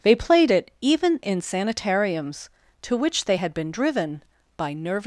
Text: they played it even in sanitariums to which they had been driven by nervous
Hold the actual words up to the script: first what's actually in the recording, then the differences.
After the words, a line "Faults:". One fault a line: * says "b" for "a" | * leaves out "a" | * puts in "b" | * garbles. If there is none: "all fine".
they played it even in sanitariums to which they had been driven by nervous
Faults:
all fine